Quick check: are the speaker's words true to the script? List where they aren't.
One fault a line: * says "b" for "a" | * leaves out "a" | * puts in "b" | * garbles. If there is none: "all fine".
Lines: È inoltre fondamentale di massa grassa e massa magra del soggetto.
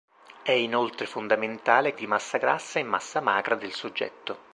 all fine